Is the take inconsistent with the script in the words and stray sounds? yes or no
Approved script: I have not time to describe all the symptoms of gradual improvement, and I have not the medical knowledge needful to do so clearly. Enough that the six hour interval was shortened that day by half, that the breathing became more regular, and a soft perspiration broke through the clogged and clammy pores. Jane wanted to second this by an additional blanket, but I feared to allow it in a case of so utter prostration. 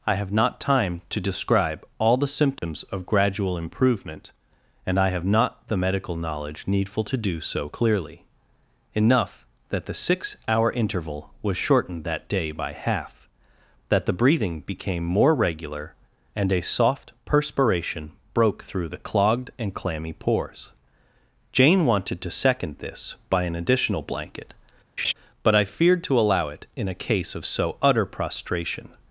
yes